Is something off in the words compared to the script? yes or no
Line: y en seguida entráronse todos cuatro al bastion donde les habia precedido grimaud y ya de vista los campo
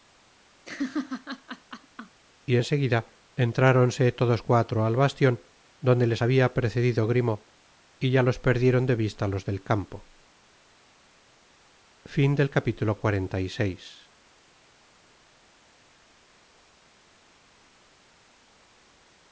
yes